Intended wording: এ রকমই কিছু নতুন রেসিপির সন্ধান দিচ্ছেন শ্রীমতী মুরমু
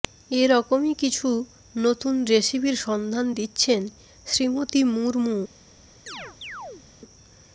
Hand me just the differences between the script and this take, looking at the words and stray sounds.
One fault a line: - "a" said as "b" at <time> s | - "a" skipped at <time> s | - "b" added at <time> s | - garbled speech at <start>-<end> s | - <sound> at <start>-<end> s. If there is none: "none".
- chirp at 6.1-6.9 s